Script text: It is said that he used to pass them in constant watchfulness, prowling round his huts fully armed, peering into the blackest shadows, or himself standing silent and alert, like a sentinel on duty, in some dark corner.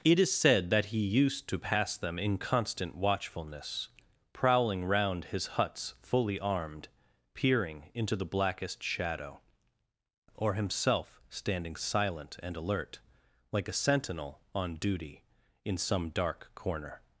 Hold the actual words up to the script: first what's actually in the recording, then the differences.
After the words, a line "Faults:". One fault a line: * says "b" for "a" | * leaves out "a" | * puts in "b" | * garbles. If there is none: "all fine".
It is said that he used to pass them in constant watchfulness, prowling round his huts fully armed, peering into the blackest shadow, or himself standing silent and alert, like a sentinel on duty, in some dark corner.
Faults:
* says "shadow" for "shadows"